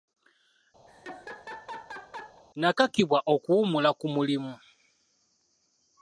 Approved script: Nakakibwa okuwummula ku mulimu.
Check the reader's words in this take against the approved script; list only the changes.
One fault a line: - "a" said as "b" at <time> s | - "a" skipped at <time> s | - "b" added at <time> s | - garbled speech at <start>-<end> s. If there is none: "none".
none